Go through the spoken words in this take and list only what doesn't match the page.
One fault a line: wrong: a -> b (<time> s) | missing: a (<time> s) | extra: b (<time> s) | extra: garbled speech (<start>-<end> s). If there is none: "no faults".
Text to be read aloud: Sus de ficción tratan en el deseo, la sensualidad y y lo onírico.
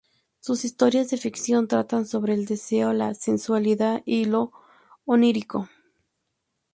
extra: historias (0.7 s)
wrong: en -> sobre (2.1 s)
missing: y (4.2 s)